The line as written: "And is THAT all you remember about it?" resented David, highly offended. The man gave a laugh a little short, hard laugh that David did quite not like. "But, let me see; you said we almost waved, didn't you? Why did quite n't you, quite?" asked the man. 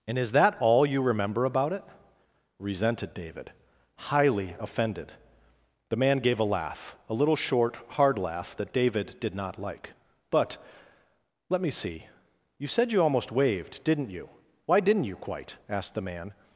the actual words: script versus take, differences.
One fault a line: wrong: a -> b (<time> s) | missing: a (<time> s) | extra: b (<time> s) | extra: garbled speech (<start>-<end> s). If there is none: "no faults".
missing: quite (9.3 s)
wrong: we -> you (12.9 s)
missing: quite (15.0 s)